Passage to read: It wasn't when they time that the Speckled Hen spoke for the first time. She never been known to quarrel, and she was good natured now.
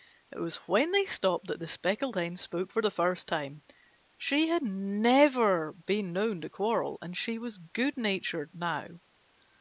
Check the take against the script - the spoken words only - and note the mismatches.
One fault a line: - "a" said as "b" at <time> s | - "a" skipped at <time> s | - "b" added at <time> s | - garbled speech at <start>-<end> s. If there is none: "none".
- "wasn't" said as "was" at 0.4 s
- "time" said as "stopped" at 1.1 s
- "had" added at 4.5 s